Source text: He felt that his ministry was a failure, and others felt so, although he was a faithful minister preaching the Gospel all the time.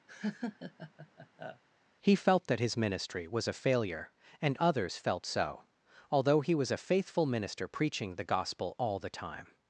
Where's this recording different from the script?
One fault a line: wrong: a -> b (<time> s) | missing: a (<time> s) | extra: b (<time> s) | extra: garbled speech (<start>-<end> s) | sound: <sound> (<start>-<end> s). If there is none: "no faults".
sound: laugh (0.1-1.6 s)